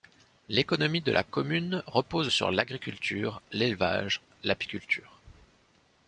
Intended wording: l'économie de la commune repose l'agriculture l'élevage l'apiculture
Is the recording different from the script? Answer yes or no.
yes